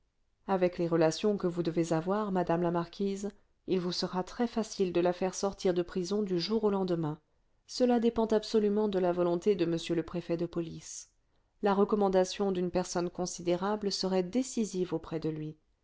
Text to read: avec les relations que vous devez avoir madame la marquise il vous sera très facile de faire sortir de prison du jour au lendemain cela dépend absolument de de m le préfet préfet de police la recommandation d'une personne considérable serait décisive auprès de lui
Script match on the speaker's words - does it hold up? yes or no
no